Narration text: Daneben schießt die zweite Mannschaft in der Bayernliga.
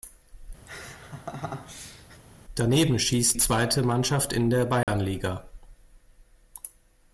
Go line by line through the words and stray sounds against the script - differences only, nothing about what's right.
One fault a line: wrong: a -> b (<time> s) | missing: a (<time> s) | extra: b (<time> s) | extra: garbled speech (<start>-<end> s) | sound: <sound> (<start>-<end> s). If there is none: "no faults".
sound: laugh (0.7-2.2 s)
missing: die (3.4 s)
sound: dropout (4.8-4.9 s)